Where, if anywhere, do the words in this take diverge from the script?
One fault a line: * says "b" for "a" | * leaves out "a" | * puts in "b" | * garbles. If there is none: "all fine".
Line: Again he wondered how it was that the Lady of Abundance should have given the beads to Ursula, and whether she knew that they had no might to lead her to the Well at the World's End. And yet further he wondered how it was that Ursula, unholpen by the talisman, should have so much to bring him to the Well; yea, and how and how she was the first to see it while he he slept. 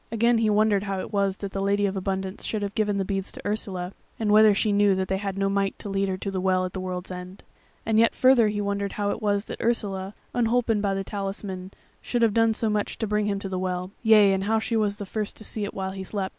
* puts in "done"
* leaves out "and how"
* leaves out "he"